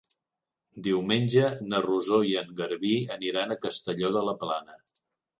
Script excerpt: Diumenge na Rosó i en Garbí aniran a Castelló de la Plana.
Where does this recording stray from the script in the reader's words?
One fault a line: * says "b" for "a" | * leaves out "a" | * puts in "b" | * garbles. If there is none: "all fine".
all fine